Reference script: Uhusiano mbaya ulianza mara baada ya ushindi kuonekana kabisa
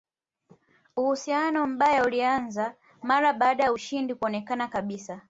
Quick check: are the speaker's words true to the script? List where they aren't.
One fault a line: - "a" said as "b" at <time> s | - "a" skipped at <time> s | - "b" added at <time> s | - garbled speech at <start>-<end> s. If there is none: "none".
none